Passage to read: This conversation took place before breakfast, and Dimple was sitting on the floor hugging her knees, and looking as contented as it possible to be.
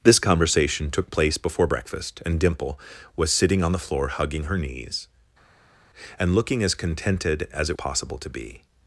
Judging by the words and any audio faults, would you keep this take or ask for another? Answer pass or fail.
pass